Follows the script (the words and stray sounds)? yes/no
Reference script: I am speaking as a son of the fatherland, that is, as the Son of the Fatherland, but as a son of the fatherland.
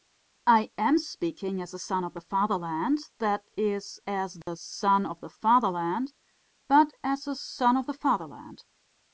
no